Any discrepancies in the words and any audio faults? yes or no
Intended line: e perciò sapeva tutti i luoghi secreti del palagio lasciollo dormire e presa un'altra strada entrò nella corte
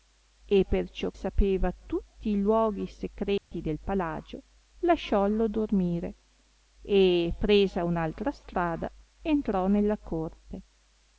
yes